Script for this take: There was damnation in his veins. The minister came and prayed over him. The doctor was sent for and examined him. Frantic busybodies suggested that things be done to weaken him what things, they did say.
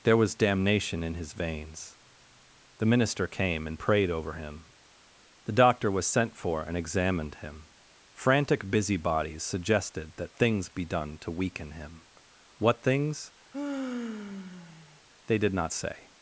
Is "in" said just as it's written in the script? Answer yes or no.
yes